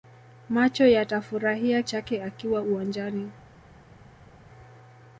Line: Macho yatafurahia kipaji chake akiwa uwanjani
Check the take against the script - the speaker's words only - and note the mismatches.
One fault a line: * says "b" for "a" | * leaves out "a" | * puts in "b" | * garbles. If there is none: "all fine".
* leaves out "kipaji"